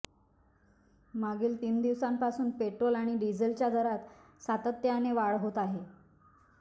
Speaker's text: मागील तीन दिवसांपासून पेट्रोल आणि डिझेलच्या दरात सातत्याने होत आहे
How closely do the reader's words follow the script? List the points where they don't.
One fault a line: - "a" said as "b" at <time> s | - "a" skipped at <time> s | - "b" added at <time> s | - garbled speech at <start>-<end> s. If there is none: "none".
- "वाढ" added at 5.1 s